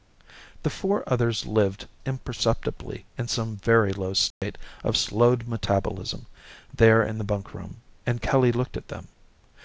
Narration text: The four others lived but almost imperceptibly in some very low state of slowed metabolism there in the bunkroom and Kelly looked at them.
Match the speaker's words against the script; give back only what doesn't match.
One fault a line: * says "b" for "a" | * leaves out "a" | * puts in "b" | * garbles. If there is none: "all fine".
* leaves out "but almost"